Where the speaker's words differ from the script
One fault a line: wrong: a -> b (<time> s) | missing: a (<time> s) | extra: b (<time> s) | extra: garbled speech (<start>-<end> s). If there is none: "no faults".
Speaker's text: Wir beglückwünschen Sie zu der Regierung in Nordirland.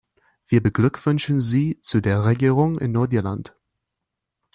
no faults